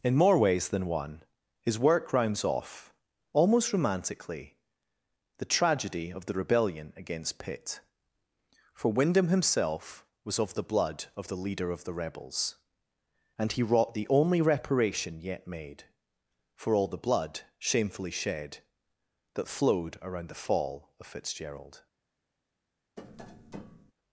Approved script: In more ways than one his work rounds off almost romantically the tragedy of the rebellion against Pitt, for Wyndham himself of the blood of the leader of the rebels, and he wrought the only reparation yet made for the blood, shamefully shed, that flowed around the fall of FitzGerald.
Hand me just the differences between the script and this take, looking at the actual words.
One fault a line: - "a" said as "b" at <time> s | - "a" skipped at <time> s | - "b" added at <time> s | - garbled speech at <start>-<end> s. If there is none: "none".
- "was" added at 10.2 s
- "all" added at 16.7 s